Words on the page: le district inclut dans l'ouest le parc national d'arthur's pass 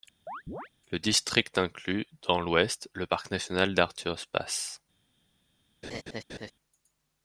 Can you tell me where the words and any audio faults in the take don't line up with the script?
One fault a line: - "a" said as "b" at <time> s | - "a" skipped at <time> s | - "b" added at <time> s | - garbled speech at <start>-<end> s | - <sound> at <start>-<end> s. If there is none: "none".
- chirp at 0.3-0.7 s
- laugh at 5.8-6.5 s